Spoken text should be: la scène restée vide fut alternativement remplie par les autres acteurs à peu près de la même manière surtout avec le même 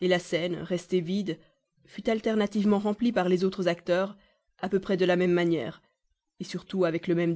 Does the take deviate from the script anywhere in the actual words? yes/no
no